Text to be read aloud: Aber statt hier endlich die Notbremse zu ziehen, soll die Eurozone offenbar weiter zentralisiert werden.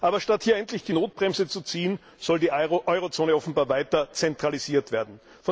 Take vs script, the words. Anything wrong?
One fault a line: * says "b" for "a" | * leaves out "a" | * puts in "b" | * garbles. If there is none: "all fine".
all fine